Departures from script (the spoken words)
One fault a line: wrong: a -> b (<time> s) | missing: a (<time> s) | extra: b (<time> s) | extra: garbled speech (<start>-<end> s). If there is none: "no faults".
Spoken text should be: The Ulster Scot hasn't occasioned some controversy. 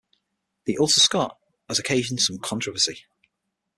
wrong: hasn't -> has (1.7 s)